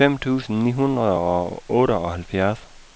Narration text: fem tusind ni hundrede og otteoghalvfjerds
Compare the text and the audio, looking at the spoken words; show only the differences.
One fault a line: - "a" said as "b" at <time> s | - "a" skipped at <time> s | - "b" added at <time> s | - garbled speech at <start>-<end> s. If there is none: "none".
none